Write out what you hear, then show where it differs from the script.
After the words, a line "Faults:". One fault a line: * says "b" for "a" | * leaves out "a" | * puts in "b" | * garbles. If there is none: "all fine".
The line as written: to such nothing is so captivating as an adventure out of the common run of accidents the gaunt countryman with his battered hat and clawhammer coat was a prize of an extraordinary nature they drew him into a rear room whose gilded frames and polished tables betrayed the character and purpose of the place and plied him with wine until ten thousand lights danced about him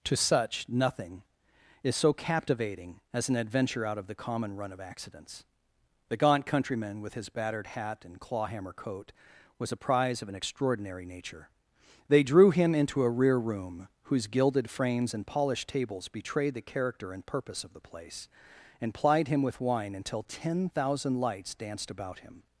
to such nothing is so captivating as an adventure out of the common run of accidents the gaunt countryman with his battered hat and clawhammer coat was a prize of an extraordinary nature they drew him into a rear room whose gilded frames and polished tables betrayed the character and purpose of the place and plied him with wine until ten thousand lights danced about him
Faults:
all fine